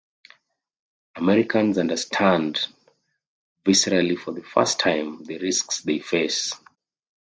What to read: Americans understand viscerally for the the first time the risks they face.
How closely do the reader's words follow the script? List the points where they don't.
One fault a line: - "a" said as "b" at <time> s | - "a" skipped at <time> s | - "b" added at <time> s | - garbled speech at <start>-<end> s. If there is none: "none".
- "the" skipped at 4.4 s